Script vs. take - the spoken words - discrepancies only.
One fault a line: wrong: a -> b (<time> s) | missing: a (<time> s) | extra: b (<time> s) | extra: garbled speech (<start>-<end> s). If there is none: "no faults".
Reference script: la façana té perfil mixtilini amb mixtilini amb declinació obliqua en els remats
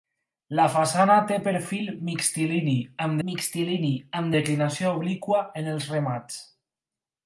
no faults